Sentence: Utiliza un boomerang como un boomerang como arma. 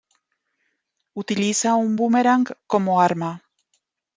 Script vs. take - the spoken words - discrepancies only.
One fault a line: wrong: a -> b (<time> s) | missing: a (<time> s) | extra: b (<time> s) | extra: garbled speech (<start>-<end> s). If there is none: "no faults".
missing: un boomerang como (3.0 s)